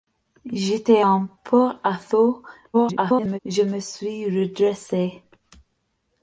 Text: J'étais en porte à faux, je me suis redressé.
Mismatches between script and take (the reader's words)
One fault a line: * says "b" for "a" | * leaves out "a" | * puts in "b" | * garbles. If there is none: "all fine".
* garbles